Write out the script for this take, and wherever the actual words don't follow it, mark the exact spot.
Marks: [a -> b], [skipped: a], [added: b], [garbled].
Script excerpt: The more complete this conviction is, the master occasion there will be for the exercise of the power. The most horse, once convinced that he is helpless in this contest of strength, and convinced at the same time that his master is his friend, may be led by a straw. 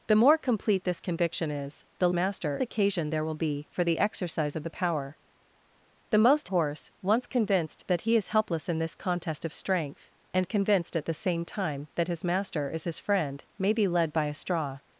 The more complete this conviction is, the master occasion there will be for the exercise of the power. The most horse, once convinced that he is helpless in this contest of strength, and convinced at the same time that his master is his friend, may be led by a straw.